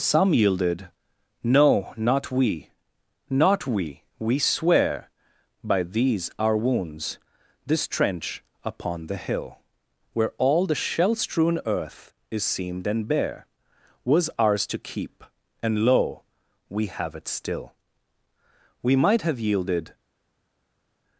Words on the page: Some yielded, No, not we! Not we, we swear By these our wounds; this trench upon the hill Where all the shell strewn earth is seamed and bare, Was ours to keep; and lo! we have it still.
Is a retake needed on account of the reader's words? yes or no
yes